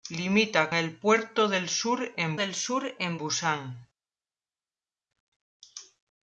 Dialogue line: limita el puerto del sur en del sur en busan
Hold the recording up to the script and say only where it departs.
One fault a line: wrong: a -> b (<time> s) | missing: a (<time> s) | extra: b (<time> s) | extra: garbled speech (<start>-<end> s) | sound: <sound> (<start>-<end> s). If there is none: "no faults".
no faults